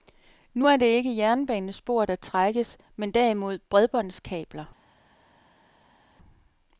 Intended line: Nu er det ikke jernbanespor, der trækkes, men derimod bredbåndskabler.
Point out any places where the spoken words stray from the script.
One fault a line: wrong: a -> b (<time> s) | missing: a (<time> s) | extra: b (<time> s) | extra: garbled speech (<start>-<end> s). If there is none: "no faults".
no faults